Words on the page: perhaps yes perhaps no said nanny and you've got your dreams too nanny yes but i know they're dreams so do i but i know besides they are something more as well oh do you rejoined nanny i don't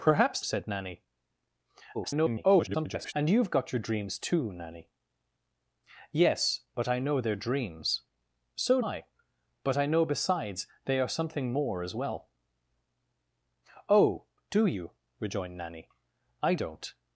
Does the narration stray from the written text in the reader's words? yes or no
yes